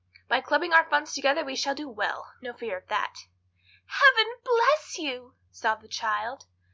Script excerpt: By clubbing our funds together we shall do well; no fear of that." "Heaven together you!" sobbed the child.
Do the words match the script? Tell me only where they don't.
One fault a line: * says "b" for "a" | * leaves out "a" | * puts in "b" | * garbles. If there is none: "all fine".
* says "bless" for "together"